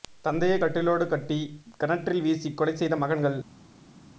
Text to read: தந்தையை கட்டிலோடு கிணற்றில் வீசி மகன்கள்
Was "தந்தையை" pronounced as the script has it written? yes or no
yes